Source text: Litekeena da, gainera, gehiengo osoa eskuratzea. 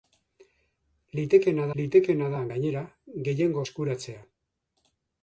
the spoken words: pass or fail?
fail